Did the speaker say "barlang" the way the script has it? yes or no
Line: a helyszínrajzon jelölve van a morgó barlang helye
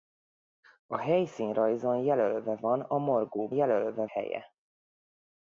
no